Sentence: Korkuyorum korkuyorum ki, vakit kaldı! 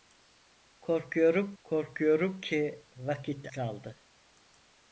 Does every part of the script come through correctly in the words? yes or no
yes